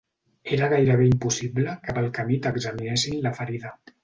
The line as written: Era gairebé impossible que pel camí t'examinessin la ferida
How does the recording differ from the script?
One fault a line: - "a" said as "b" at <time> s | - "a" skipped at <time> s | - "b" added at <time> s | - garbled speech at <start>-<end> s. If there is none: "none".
none